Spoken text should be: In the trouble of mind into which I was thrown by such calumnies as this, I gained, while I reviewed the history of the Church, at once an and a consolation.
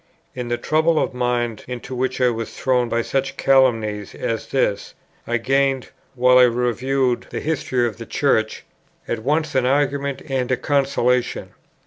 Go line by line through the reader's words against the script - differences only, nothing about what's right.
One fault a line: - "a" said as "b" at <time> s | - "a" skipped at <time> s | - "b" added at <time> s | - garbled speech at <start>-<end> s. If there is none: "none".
- "argument" added at 9.7 s